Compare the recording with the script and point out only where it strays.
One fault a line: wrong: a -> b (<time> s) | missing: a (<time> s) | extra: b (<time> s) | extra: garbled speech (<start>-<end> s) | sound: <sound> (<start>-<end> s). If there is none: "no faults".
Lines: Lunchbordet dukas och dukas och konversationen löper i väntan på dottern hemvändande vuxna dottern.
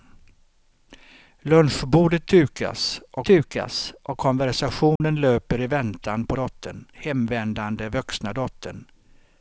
sound: dropout (5.0-5.0 s)